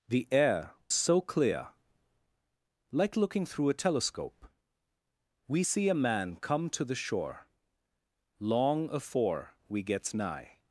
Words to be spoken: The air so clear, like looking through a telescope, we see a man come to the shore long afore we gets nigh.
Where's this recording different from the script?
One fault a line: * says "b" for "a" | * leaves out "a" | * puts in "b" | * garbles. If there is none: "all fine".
all fine